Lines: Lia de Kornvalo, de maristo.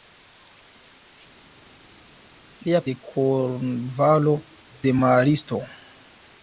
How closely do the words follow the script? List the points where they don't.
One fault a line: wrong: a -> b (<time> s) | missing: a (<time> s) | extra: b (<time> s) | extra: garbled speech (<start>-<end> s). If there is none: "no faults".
no faults